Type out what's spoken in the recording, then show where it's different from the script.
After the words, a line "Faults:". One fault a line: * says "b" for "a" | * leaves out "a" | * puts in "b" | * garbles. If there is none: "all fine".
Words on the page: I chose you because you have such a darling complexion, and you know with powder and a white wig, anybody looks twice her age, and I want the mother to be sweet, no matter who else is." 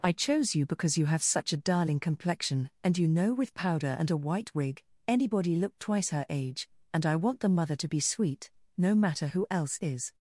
I chose you because you have such a darling complexion, and you know with powder and a white wig, anybody look twice her age, and I want the mother to be sweet, no matter who else is."
Faults:
* says "look" for "looks"